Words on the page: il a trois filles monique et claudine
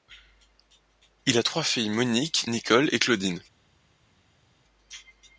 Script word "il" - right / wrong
right